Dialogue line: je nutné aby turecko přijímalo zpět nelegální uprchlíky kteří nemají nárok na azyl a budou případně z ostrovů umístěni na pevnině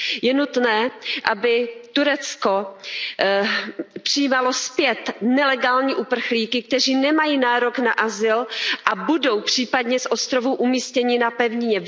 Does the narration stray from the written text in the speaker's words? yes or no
no